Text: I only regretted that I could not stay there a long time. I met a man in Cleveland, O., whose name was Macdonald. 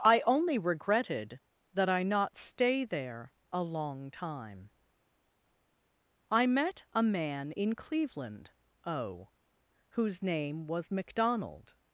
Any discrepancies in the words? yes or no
yes